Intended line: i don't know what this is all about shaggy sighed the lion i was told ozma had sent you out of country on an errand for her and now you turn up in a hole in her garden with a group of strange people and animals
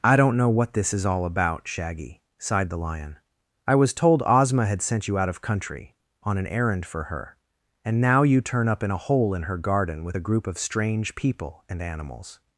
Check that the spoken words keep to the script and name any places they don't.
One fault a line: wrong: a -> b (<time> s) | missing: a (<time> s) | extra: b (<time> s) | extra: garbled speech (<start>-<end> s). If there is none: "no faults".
no faults